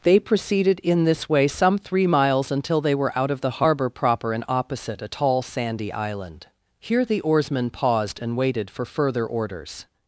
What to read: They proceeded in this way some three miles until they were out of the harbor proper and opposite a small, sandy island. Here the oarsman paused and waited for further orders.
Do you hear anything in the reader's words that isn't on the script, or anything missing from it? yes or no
yes